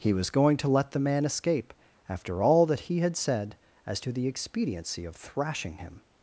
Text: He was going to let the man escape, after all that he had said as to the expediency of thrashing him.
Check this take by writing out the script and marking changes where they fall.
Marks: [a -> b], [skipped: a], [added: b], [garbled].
He was going to let the man escape, after all that he had said as to the expediency of thrashing him.